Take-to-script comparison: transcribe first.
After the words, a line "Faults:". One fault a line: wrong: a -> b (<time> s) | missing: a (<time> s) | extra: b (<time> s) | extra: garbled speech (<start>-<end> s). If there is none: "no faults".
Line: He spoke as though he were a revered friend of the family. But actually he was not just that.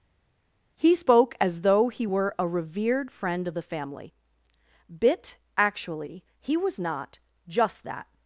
He spoke as though he were a revered friend of the family. Bit actually he was not just that.
Faults:
wrong: But -> Bit (4.9 s)